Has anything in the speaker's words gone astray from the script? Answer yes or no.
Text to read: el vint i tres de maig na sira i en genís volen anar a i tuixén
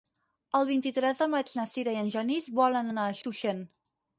no